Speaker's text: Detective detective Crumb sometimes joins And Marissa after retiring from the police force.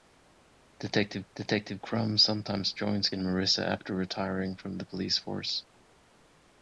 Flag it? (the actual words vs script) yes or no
no